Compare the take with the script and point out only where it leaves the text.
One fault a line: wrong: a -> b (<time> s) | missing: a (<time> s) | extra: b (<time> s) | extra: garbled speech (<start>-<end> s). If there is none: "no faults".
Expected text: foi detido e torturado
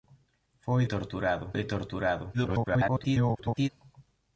wrong: detido -> torturado (0.8 s)
extra: garbled speech (2.3-3.7 s)